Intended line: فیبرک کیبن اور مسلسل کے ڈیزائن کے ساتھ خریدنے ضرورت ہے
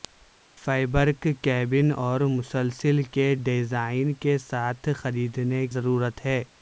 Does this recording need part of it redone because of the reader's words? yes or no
no